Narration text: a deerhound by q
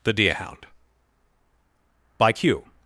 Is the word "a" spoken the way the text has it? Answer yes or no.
no